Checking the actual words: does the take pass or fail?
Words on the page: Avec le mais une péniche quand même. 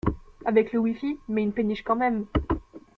fail